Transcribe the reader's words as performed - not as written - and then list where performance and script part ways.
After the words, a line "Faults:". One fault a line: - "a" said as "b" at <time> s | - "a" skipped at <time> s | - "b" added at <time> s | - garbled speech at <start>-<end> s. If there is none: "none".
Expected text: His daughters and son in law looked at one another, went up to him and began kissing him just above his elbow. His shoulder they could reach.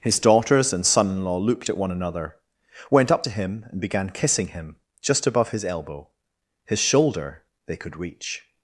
His daughters and son in law looked at one another, went up to him and began kissing him just above his elbow. His shoulder they could reach.
Faults:
none